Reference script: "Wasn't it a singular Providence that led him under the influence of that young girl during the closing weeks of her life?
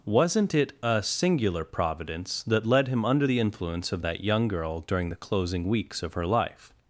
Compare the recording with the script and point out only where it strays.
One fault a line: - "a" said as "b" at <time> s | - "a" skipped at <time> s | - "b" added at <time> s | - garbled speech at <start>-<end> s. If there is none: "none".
none